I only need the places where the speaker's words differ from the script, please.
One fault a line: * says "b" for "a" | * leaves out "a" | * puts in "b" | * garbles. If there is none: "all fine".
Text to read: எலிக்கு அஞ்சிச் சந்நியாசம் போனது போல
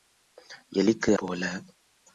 * leaves out "அஞ்சிச் சந்நியாசம் போனது"